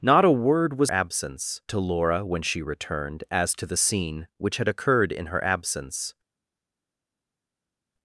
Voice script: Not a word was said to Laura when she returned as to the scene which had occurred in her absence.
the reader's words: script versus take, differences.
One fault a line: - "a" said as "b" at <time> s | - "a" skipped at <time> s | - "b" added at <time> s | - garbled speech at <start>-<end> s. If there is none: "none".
- "said" said as "absence" at 0.9 s